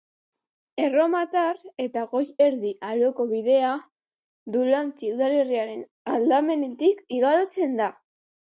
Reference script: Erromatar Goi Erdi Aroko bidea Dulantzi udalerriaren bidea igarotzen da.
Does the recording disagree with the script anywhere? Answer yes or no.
yes